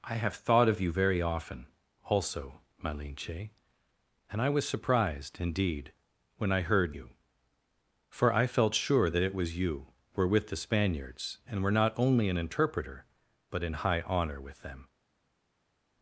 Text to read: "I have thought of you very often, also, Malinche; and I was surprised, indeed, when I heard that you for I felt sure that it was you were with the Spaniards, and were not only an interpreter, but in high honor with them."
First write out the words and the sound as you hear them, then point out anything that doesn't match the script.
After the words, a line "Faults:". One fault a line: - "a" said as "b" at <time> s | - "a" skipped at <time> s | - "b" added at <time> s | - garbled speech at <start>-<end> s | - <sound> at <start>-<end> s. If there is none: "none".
"I have thought of you very often, also, Malinche; and I was surprised, indeed, when I heard you for I felt sure that it was you were with the Spaniards, and were not only an interpreter, but in high honor with them."
Faults:
- "that" skipped at 6.9 s